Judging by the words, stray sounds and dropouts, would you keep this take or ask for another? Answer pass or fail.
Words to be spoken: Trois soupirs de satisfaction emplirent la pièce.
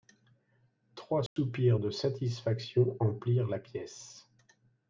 fail